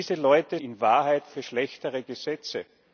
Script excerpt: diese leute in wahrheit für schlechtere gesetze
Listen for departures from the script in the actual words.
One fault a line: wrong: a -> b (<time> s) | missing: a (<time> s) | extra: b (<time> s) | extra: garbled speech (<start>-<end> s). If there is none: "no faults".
no faults